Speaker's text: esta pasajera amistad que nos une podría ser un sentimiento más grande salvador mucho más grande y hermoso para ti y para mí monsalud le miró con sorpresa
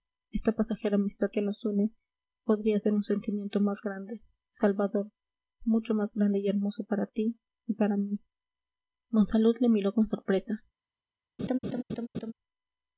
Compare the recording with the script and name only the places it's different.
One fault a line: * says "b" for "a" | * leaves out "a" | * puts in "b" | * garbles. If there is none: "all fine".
all fine